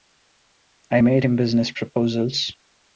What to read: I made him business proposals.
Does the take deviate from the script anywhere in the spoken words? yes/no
no